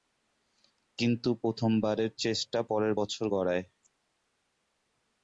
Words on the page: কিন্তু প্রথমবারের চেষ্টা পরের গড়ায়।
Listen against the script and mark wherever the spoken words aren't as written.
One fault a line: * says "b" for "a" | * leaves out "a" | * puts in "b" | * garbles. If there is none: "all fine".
* puts in "বছর"